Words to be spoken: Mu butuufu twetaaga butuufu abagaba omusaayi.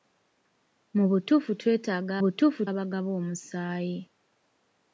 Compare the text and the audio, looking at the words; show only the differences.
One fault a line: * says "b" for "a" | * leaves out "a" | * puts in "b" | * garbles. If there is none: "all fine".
all fine